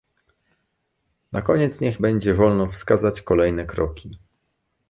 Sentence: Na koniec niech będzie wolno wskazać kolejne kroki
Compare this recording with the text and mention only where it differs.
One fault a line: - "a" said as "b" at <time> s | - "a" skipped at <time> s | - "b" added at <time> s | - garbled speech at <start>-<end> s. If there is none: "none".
none